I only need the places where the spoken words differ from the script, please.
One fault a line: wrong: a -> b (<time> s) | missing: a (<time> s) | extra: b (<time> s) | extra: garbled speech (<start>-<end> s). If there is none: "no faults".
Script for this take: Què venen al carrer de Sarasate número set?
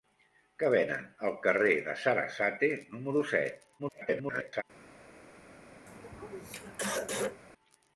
extra: garbled speech (3.8-4.6 s)